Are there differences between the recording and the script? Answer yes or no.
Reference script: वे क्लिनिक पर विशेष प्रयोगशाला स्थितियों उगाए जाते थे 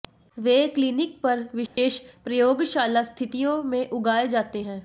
yes